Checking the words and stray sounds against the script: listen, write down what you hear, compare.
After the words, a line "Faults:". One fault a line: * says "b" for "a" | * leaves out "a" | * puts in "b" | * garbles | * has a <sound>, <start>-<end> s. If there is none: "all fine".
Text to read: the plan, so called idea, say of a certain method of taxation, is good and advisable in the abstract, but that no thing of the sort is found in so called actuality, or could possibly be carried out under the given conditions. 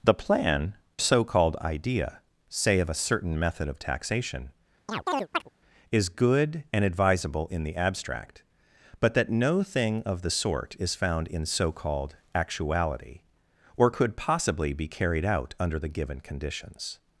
the plan, so called idea, say of a certain method of taxation, is good and advisable in the abstract, but that no thing of the sort is found in so called actuality, or could possibly be carried out under the given conditions.
Faults:
* has a chirp, 4.9-5.5 s